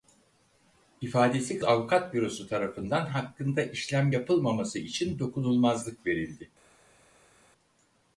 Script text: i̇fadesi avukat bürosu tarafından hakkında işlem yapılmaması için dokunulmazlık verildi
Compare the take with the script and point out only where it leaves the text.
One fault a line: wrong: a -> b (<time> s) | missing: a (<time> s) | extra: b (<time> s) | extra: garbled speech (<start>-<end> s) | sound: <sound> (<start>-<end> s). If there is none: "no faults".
no faults